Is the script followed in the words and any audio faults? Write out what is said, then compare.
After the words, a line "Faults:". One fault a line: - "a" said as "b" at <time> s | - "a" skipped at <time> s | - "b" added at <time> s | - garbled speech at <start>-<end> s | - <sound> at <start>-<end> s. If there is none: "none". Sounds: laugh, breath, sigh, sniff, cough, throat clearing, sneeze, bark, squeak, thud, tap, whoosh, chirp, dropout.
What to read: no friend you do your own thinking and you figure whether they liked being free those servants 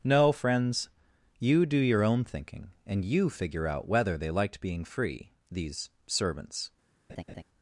no friends you do your own thinking and you figure out whether they liked being free these servants
Faults:
- "friend" said as "friends" at 0.3 s
- "out" added at 3.7 s
- "those" said as "these" at 5.5 s
- laugh at 7.1-7.4 s